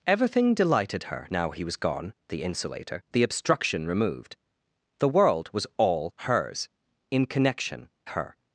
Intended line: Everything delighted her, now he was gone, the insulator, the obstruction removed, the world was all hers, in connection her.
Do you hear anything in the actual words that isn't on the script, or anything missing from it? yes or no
no